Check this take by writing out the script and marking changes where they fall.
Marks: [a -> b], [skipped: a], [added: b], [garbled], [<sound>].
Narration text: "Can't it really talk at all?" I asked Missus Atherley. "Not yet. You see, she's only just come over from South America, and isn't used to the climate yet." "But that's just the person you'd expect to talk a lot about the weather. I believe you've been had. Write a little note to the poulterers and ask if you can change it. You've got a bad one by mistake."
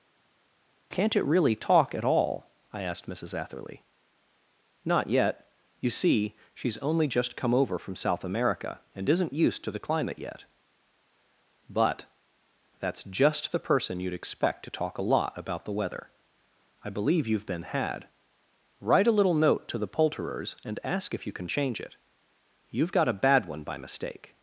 "Can't it really talk at all?" I asked Missus Atherley. "Not yet. You see, she's only just come over from South America, and isn't used to the climate yet." "But that's just the person you'd expect to talk a lot about the weather. I believe you've been had. Write a little note to the poulterers and ask if you can change it. You've got a bad one by mistake."